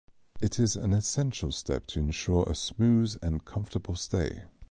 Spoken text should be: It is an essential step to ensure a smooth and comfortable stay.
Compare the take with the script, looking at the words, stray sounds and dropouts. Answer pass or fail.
pass